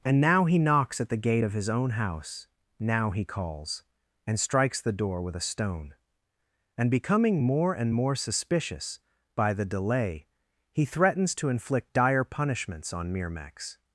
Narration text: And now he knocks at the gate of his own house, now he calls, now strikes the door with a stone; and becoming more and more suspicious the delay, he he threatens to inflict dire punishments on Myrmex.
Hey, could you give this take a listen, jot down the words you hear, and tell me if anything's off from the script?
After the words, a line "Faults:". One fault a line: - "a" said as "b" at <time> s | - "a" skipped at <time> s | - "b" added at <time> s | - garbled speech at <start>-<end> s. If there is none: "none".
And now he knocks at the gate of his own house, now he calls, and strikes the door with a stone; and becoming more and more suspicious by the delay, he threatens to inflict dire punishments on Myrmex.
Faults:
- "now" said as "and" at 4.3 s
- "by" added at 9.3 s
- "he" skipped at 10.8 s